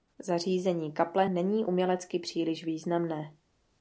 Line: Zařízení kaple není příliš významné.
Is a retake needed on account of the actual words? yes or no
yes